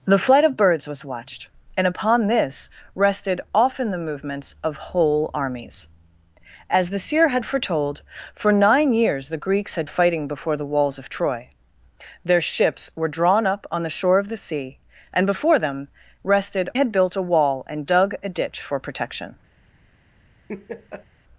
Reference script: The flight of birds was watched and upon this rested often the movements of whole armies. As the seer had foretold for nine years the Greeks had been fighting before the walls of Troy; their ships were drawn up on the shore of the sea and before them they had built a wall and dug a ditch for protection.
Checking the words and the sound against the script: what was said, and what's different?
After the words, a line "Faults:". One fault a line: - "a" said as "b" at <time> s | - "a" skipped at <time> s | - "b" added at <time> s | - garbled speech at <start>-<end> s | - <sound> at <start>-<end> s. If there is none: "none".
The flight of birds was watched and upon this rested often the movements of whole armies. As the seer had foretold for nine years the Greeks had fighting before the walls of Troy; their ships were drawn up on the shore of the sea and before them rested had built a wall and dug a ditch for protection.
Faults:
- "been" skipped at 9.9 s
- "they" said as "rested" at 16.2 s
- laugh at 20.5-21.1 s